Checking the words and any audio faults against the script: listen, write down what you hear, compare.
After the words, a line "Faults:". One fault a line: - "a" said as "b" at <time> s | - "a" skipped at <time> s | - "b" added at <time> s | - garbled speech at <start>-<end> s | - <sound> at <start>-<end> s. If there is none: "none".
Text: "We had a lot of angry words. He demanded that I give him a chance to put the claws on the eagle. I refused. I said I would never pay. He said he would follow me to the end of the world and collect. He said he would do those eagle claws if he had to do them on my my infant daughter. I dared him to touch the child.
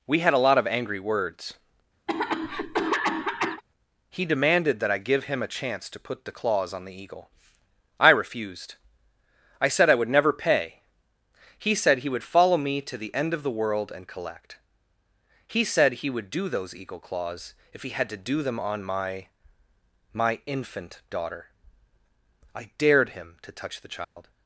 "We had a lot of angry words. He demanded that I give him a chance to put the claws on the eagle. I refused. I said I would never pay. He said he would follow me to the end of the world and collect. He said he would do those eagle claws if he had to do them on my my infant daughter. I dared him to touch the child.
Faults:
- cough at 2.1-3.6 s
- dropout at 24.0-24.2 s